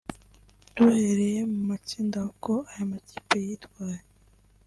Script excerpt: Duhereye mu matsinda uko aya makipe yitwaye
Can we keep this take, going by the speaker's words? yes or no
yes